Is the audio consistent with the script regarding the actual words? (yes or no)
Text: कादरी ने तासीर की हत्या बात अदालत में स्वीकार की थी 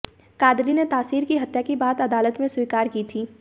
no